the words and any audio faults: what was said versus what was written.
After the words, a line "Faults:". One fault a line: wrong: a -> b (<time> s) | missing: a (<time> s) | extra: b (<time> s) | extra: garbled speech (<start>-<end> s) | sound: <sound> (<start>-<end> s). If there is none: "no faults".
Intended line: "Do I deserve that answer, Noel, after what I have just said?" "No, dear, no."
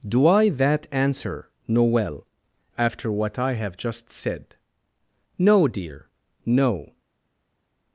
"Do I that answer, Noel, after what I have just said?" "No, dear, no."
Faults:
missing: deserve (0.5 s)